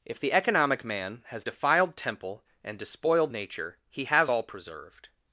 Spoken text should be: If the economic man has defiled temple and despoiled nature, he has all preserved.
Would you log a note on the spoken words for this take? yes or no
no